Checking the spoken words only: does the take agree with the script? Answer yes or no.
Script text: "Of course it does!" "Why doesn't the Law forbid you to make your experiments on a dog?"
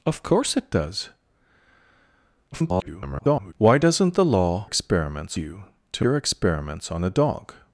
no